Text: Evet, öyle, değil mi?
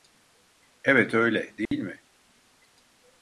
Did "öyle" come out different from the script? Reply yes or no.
no